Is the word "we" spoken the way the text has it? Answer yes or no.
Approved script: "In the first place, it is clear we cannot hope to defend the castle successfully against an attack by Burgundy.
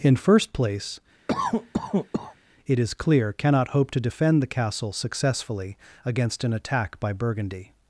no